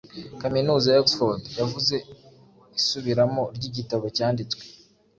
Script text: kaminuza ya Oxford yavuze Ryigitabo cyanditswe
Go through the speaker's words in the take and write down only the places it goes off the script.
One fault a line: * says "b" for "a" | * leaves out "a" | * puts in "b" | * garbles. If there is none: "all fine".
* puts in "Isubiramo"